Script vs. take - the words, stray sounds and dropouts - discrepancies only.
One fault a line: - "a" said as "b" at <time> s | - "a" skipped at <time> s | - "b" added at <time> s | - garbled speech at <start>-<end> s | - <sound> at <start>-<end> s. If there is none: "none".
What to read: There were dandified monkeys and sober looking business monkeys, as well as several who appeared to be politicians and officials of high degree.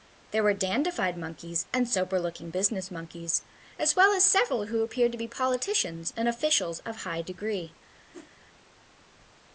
- whoosh at 8.1-8.3 s